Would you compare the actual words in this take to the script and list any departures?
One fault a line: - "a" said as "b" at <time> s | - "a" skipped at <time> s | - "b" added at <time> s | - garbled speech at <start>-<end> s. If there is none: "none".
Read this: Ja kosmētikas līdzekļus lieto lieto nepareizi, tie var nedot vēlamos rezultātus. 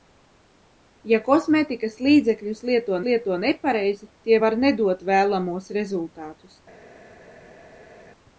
none